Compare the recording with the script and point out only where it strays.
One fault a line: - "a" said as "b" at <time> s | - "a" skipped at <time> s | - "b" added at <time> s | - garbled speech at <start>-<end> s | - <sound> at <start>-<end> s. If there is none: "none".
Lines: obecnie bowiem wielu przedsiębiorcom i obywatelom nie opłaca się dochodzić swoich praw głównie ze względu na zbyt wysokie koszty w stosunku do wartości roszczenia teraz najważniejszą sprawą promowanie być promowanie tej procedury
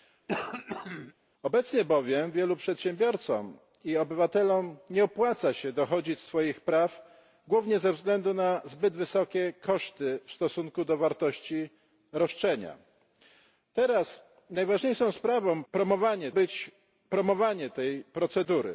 - throat clearing at 0.3-1.1 s